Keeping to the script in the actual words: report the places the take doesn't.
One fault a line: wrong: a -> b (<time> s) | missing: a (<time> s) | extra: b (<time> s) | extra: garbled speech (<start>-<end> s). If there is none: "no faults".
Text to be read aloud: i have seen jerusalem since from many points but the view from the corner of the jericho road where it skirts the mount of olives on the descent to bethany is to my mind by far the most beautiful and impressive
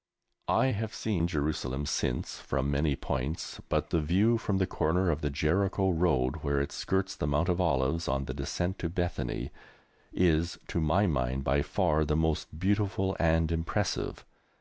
no faults